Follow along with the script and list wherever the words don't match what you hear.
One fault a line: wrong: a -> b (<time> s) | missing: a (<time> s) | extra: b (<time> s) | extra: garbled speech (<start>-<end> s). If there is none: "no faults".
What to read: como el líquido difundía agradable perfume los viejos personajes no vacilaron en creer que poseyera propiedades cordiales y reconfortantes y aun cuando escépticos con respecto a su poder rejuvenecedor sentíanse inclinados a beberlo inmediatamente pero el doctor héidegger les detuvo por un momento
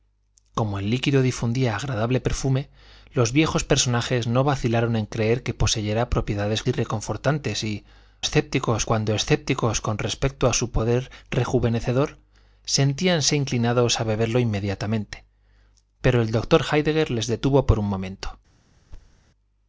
missing: cordiales (6.6 s)
wrong: aun -> escépticos (8.2 s)